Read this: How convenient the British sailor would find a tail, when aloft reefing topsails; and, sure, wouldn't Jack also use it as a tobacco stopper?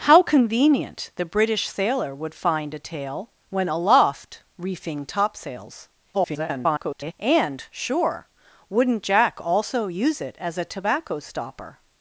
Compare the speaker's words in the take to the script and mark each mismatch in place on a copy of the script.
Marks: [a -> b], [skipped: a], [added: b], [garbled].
How convenient the British sailor would find a tail, when aloft reefing topsails; [garbled] and, sure, wouldn't Jack also use it as a tobacco stopper?